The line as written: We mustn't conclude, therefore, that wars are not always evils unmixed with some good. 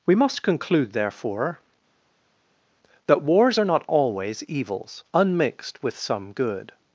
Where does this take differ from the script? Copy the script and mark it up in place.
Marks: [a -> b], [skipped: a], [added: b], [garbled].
We [mustn't -> must] conclude, therefore, that wars are not always evils unmixed with some good.